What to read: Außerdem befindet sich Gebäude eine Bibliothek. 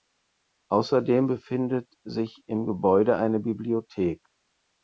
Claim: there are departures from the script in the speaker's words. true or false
true